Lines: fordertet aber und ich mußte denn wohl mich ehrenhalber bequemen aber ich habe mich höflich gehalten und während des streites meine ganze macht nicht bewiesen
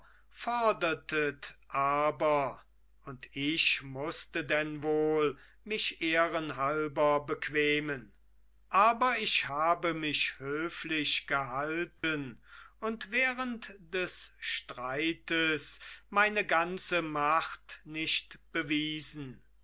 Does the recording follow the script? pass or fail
pass